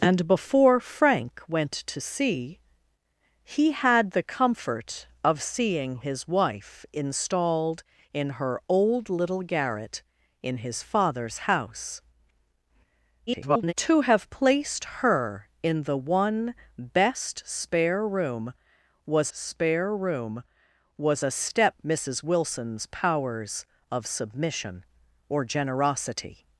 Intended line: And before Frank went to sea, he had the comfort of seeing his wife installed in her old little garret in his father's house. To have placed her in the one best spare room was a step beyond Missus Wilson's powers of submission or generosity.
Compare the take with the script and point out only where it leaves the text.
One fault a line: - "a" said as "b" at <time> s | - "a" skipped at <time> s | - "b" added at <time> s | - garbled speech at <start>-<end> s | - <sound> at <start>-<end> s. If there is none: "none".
- garbled speech at 13.3-13.7 s
- "spare room was" added at 19.3 s
- "beyond" skipped at 21.7 s